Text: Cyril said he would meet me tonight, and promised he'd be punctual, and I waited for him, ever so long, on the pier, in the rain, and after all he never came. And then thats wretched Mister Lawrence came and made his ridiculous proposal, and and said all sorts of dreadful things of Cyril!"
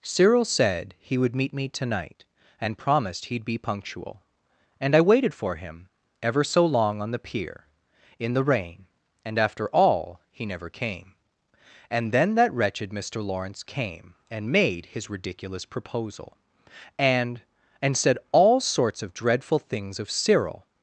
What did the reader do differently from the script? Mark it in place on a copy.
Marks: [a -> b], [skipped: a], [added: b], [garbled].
Cyril said he would meet me tonight, and promised he'd be punctual, and I waited for him, ever so long, on the pier, in the rain, and after all he never came. And then [thats -> that] wretched Mister Lawrence came and made his ridiculous proposal, and and said all sorts of dreadful things of Cyril!"